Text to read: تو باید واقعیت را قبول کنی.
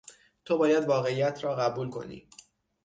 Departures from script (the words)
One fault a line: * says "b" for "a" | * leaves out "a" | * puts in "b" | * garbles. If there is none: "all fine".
all fine